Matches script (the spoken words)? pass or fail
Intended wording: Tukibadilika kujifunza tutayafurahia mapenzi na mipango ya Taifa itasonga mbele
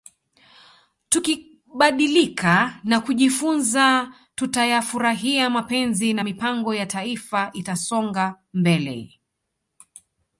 fail